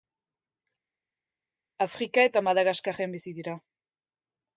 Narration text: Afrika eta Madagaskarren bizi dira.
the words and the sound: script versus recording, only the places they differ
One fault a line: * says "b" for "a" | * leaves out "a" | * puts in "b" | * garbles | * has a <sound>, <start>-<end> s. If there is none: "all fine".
all fine